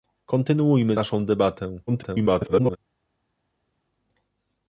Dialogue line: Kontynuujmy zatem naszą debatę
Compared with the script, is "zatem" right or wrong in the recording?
wrong